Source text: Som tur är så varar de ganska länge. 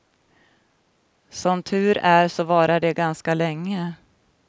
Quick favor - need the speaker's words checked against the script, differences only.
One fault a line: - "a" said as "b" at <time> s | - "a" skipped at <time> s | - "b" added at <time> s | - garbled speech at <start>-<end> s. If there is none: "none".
none